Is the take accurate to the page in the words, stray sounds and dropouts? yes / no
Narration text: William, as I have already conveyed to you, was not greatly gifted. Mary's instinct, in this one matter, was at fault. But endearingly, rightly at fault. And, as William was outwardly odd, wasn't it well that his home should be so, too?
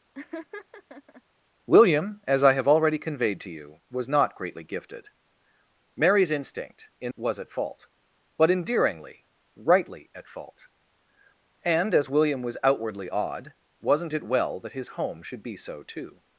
no